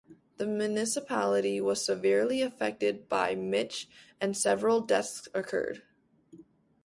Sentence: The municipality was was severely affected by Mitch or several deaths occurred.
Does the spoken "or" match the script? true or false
false